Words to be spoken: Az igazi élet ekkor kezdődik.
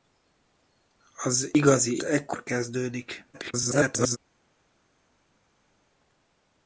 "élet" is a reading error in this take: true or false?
true